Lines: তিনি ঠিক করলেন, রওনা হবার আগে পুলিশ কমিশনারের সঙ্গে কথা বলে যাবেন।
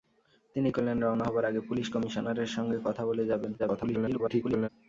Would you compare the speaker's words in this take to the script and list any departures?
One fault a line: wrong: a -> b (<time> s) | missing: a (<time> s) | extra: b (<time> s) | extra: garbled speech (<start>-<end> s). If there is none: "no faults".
missing: ঠিক (0.7 s)
extra: garbled speech (3.6-4.7 s)